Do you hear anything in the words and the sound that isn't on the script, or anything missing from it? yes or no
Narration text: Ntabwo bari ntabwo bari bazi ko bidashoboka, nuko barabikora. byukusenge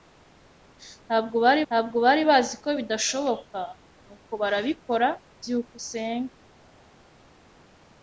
no